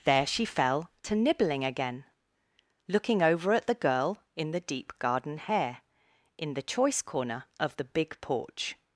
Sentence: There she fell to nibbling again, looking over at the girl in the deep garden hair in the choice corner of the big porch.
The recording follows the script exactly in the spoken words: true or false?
true